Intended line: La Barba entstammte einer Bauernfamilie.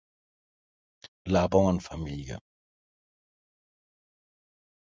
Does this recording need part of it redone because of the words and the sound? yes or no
yes